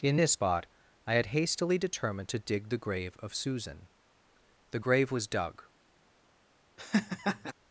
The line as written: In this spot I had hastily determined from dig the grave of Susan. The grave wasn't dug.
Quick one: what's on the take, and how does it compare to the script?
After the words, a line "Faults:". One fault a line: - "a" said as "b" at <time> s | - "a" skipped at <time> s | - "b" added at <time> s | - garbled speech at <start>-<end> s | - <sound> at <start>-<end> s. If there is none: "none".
In this spot I had hastily determined to dig the grave of Susan. The grave was dug.
Faults:
- "from" said as "to" at 2.3 s
- "wasn't" said as "was" at 5.1 s
- laugh at 6.8-7.5 s